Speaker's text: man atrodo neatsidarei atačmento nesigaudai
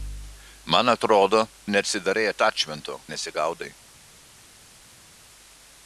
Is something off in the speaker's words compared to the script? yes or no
no